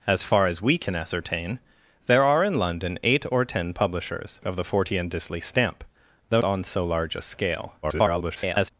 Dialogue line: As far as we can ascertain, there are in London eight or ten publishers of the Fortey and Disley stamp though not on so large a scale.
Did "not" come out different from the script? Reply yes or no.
yes